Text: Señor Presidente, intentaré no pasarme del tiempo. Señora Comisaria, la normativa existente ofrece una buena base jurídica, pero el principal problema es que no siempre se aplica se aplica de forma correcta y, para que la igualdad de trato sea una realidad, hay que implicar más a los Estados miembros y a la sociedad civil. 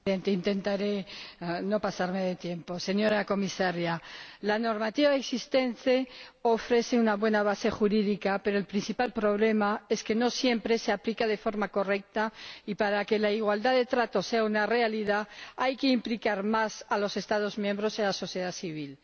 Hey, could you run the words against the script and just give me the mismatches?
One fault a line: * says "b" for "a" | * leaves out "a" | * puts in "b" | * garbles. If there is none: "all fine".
* leaves out "se aplica"